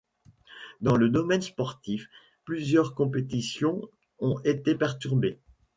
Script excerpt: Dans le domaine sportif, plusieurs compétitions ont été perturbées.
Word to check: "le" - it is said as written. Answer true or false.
true